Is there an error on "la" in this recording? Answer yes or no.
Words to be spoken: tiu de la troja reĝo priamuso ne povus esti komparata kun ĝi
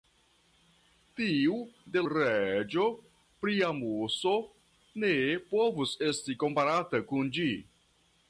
yes